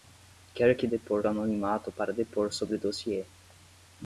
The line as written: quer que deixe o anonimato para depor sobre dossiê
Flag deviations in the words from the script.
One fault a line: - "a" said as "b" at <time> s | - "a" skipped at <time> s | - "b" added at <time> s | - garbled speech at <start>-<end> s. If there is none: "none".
- "deixe" said as "depor" at 0.9 s